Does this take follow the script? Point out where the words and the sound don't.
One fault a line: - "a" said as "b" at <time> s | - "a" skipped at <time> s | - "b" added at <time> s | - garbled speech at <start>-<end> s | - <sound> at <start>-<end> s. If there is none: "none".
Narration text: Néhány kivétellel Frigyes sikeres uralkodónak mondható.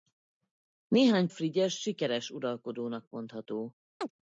- "kivétellel" skipped at 1.3 s
- chirp at 4.0-4.1 s